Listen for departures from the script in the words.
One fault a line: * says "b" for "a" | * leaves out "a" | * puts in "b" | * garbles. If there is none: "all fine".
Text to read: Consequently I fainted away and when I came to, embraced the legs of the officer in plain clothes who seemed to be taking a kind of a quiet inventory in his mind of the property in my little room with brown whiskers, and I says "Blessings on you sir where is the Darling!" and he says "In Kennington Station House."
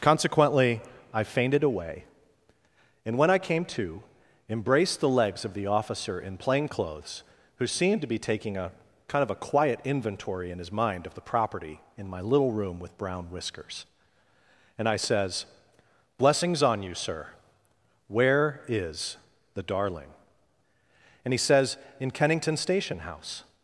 all fine